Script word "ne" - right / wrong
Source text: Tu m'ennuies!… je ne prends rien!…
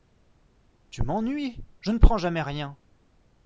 right